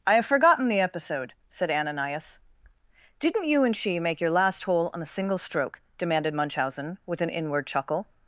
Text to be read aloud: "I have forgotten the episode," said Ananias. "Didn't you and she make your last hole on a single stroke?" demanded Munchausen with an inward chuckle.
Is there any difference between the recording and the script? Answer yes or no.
no